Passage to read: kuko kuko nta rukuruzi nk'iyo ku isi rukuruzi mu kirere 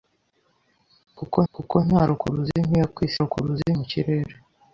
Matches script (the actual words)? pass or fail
pass